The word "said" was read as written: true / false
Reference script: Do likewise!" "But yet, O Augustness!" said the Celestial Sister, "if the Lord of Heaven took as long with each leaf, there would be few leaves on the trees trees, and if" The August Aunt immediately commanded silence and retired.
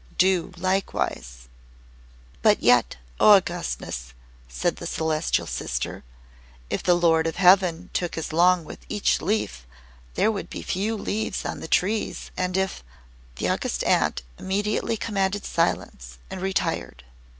true